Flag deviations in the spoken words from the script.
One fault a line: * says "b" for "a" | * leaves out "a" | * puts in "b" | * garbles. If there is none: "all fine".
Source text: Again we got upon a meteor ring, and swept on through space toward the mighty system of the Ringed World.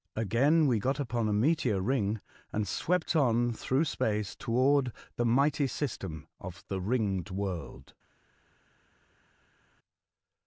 all fine